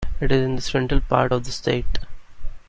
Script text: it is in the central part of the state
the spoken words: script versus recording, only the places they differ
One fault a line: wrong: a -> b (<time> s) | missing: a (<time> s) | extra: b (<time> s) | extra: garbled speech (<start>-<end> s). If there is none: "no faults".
no faults